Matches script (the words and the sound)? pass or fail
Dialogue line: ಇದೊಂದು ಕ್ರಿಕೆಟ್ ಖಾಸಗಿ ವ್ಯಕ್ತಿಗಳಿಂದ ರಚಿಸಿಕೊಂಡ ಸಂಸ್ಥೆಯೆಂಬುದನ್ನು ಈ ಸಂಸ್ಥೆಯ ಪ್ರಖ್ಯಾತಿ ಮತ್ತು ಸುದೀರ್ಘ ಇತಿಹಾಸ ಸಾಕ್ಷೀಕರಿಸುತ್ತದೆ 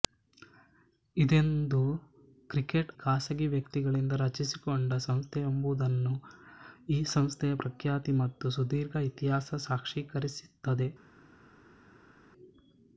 pass